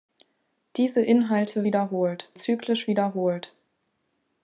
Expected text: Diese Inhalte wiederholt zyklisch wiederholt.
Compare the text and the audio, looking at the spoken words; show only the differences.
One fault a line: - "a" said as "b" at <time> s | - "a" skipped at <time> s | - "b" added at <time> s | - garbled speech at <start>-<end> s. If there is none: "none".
none